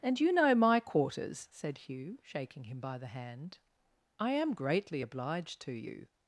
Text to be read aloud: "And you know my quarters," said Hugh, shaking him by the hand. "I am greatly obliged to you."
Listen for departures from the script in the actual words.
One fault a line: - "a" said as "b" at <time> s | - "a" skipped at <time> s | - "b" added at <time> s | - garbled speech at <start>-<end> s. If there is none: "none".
none